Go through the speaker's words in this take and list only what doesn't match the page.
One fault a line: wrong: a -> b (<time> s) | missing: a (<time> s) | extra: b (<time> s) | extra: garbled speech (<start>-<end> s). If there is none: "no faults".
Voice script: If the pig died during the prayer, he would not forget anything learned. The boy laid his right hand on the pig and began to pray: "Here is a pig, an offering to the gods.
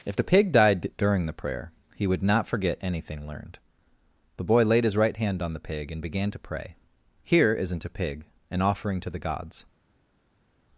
wrong: is -> isn't (7.5 s)